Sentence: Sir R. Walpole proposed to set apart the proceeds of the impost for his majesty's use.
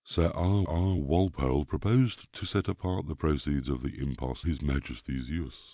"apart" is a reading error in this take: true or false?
false